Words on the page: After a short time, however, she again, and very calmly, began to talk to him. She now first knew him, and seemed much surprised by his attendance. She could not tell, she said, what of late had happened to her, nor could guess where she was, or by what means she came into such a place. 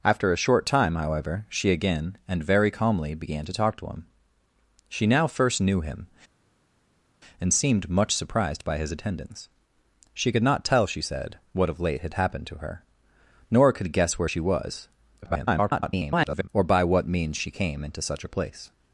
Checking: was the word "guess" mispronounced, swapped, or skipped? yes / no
no